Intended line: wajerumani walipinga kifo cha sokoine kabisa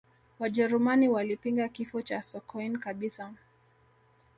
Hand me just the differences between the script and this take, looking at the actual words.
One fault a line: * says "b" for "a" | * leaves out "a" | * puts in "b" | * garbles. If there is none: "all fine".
all fine